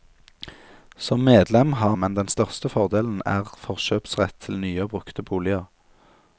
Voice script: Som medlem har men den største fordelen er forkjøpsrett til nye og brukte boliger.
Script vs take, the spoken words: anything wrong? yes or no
no